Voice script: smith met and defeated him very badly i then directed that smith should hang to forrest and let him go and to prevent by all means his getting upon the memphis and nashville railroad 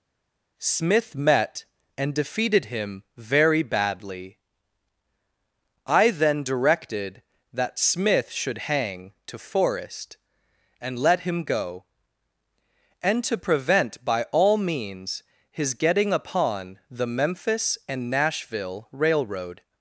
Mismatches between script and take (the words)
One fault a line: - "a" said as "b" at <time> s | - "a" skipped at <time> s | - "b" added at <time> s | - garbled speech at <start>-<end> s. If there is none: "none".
none